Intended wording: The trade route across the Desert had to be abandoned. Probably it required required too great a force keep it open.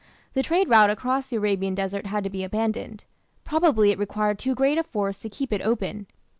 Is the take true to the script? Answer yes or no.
no